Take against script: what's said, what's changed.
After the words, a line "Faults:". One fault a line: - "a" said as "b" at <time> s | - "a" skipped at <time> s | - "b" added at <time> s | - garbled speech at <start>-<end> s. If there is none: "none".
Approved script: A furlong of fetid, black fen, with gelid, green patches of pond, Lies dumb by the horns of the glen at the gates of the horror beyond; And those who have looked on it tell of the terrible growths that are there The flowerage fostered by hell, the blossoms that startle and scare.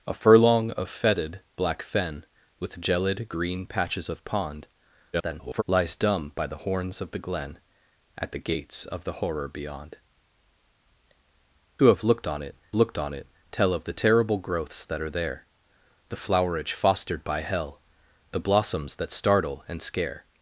A furlong of fetid, black fen, with gelid, green patches of pond, [garbled] Lies dumb by the horns of the glen at the gates of the horror beyond; Who have looked on it looked on it tell of the terrible growths that are there The flowerage fostered by hell, the blossoms that startle and scare.
Faults:
- garbled speech at 5.1-5.6 s
- "And those who have" said as "Who have looked on it" at 11.8 s